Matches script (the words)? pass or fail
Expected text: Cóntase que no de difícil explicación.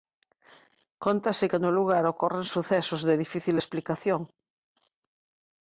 fail